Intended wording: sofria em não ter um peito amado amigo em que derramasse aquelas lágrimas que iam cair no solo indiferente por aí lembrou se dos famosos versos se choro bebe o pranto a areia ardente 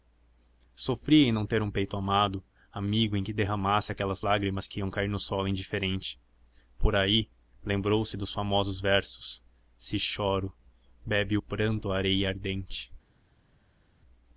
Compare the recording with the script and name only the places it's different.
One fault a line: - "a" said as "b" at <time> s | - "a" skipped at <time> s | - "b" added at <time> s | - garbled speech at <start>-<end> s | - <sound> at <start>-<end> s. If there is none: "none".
none